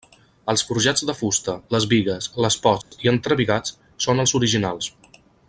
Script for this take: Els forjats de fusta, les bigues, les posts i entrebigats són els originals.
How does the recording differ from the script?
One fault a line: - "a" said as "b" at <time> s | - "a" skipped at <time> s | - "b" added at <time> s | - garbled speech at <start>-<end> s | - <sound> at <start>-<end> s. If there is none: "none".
- dropout at 2.8-2.9 s